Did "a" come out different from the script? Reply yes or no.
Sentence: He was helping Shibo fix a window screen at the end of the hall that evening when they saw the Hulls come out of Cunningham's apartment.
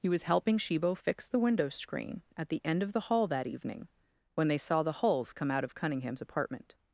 yes